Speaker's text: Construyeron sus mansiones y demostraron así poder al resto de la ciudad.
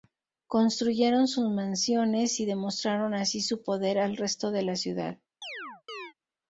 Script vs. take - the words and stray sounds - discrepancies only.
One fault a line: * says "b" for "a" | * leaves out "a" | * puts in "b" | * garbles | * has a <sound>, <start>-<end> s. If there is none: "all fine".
* puts in "su"
* has a chirp, 5.4-6.1 s